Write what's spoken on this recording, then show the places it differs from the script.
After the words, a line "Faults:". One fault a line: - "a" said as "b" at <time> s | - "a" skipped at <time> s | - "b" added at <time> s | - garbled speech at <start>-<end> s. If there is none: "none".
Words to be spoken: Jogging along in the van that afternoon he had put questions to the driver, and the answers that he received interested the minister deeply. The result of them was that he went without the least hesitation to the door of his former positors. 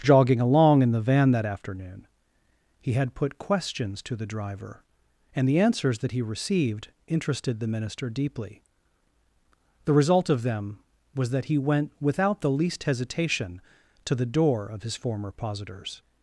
Jogging along in the van that afternoon he had put questions to the driver, and the answers that he received interested the minister deeply. The result of them was that he went without the least hesitation to the door of his former positors.
Faults:
none